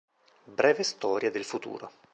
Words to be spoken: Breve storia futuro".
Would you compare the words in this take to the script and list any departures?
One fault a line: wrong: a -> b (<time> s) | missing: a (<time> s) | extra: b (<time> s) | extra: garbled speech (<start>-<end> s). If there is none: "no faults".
extra: del (1.3 s)